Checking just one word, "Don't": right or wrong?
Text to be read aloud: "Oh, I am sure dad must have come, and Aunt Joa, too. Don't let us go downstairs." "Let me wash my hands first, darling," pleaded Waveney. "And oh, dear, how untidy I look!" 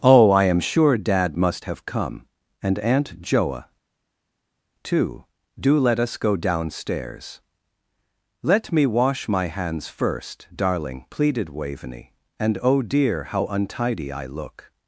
wrong